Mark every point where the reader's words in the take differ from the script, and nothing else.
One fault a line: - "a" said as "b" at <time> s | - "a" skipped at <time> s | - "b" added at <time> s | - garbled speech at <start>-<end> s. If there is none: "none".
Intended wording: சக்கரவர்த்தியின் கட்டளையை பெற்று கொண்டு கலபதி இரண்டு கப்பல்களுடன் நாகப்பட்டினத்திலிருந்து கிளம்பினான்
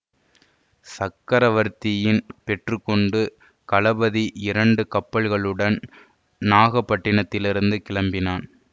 - "கட்டளையை" skipped at 2.2 s